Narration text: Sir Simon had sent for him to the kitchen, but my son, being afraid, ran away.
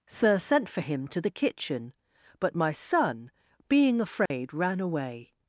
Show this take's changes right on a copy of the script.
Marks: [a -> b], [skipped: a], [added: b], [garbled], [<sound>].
Sir [skipped: Simon had] sent for him to the kitchen, but my son, being afraid, [dropout] ran away.